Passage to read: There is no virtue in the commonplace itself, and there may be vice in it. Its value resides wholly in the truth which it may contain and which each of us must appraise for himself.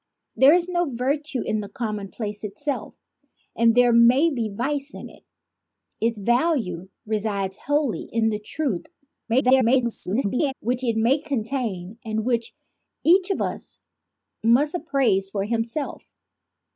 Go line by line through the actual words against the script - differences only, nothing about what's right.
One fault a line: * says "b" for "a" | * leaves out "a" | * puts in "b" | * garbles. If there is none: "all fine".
* garbles